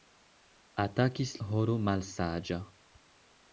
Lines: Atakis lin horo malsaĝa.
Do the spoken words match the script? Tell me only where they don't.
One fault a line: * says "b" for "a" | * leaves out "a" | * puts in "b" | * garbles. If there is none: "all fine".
* leaves out "lin"